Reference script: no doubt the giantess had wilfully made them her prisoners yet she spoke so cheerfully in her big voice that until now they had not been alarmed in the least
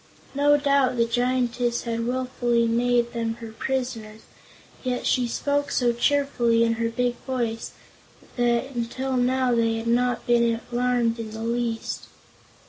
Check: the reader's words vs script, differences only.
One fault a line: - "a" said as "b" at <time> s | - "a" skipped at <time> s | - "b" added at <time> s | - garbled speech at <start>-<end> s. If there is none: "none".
none